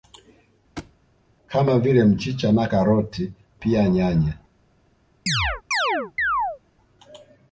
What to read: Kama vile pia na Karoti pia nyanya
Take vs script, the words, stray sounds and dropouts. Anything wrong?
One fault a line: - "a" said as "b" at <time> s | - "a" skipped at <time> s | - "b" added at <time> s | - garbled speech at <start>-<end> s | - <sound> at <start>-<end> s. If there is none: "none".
- thud at 0.8-0.9 s
- "pia" said as "mchicha" at 2.0 s
- chirp at 5.3-6.6 s